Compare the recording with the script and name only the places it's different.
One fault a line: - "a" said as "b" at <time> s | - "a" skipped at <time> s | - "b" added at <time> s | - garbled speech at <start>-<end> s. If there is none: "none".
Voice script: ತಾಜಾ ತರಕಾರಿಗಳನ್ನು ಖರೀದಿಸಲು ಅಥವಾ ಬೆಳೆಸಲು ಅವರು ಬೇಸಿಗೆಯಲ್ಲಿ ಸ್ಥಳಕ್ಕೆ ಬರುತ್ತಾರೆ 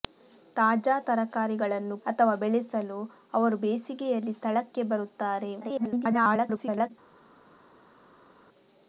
- "ಖರೀದಿಸಲು" skipped at 1.9 s
- garbled speech at 5.6-6.9 s